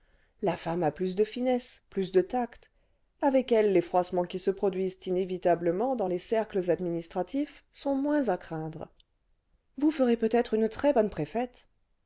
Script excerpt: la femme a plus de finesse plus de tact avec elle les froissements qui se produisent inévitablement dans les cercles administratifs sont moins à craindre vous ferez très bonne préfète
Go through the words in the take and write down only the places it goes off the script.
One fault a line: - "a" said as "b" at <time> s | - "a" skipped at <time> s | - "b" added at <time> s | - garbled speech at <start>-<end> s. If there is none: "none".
- "peut être une" added at 10.2 s